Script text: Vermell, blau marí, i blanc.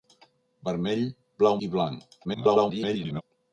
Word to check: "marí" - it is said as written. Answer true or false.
false